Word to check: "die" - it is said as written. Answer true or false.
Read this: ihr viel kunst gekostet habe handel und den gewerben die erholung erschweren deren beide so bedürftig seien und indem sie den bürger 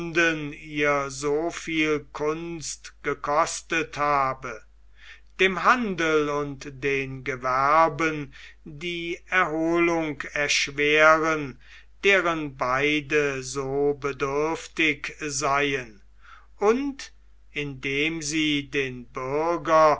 true